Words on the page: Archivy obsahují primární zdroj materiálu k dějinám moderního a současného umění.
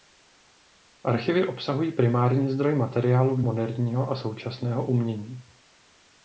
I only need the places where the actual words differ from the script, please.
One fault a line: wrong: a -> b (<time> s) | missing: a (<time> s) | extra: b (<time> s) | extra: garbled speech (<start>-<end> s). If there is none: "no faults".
missing: dějinám (3.4 s)